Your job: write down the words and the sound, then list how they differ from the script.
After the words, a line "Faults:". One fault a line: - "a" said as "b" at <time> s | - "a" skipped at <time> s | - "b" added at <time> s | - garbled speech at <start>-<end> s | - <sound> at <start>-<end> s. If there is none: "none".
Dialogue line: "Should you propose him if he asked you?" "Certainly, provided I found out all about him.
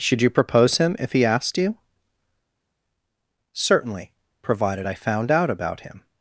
"Should you propose him if he asked you?" "Certainly, provided I found out about him.
Faults:
- "all" skipped at 5.5 s